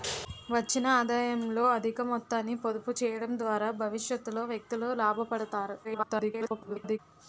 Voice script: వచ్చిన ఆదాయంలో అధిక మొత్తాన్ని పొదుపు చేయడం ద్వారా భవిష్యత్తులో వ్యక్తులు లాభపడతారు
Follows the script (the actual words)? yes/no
no